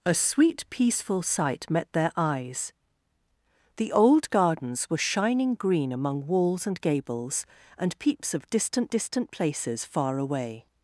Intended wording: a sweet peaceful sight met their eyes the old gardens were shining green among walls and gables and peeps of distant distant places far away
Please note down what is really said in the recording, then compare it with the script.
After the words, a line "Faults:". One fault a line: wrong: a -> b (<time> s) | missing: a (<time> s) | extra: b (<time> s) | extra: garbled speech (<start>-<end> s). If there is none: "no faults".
a sweet peaceful sight met their eyes the old gardens were shining green among walls and gables and peeps of distant distant places far away
Faults:
no faults